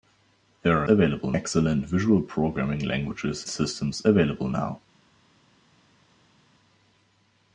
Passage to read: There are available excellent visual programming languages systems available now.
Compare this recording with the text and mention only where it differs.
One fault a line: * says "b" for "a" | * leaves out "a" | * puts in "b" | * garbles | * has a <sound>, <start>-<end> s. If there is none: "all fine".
all fine